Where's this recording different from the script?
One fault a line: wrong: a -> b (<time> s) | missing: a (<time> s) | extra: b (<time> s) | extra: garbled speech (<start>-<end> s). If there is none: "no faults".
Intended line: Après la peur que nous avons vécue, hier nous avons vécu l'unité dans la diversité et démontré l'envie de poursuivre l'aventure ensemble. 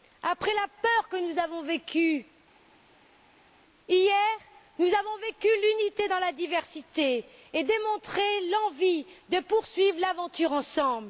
no faults